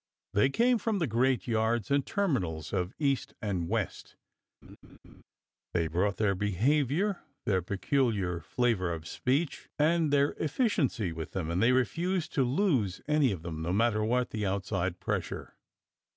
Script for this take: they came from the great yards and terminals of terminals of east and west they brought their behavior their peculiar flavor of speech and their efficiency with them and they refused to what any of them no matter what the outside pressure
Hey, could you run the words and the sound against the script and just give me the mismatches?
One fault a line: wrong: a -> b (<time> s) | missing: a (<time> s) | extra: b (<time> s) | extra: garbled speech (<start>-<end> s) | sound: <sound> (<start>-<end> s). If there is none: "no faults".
missing: terminals of (3.0 s)
sound: laugh (4.6-5.2 s)
wrong: what -> lose (12.4 s)